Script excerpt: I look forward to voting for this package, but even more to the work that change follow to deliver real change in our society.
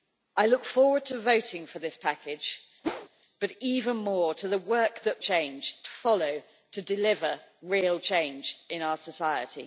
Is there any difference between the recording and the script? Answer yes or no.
no